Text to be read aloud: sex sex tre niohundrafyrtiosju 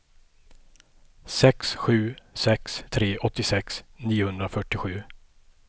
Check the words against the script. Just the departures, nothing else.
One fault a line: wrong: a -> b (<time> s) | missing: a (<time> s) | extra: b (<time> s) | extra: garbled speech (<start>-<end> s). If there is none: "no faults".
extra: sju (1.8 s)
extra: åttiosex (3.1 s)